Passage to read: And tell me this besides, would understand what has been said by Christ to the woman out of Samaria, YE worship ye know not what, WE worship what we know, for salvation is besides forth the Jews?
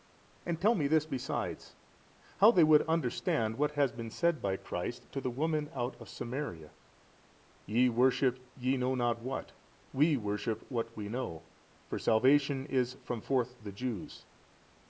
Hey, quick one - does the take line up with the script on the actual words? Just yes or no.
no